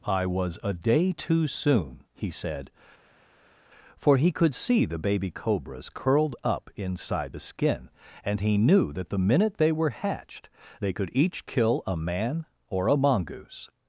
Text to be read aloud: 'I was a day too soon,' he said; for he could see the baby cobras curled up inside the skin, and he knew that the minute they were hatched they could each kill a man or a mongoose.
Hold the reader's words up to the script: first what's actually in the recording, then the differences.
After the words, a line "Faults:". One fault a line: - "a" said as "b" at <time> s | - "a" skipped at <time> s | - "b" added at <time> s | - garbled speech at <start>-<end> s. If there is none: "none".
'I was a day too soon,' he said; for he could see the baby cobras curled up inside the skin, and he knew that the minute they were hatched they could each kill a man or a mongoose.
Faults:
none